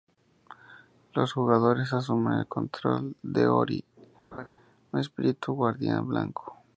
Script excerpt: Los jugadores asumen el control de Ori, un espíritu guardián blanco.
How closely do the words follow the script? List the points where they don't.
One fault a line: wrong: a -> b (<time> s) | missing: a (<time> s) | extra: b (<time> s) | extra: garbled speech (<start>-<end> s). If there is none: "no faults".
no faults